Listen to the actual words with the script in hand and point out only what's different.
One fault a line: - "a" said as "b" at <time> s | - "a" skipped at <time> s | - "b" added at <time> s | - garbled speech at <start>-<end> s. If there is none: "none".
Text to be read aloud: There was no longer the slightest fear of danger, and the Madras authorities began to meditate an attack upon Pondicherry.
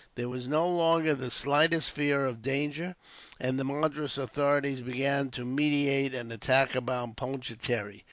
none